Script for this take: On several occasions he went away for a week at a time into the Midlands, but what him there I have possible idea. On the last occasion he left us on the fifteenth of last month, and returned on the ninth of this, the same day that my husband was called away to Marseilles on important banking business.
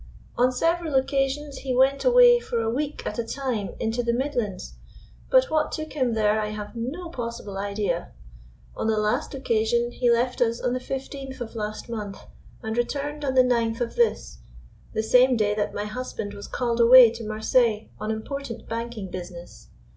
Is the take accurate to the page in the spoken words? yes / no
no